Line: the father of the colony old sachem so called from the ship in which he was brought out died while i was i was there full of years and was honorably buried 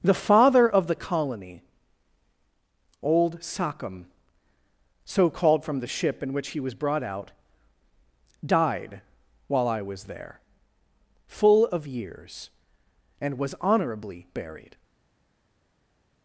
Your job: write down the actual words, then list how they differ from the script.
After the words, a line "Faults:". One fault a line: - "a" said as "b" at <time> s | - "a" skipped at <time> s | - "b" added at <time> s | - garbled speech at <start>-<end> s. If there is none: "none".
the father of the colony old sachem so called from the ship in which he was brought out died while i was there full of years and was honorably buried
Faults:
- "i was" skipped at 10.1 s